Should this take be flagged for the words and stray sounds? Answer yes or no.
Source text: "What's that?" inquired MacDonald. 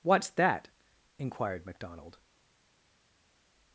no